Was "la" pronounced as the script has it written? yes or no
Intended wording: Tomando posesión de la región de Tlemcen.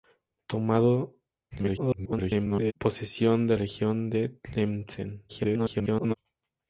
no